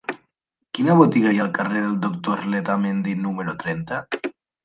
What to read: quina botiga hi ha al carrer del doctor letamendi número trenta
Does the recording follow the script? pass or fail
pass